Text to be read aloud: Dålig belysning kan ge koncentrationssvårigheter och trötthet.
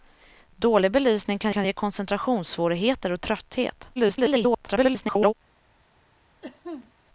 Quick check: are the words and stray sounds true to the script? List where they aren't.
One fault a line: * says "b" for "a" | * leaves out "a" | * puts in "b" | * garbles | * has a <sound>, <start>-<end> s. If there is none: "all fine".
* puts in "kan"
* garbles
* has a cough, 6.4-6.9 s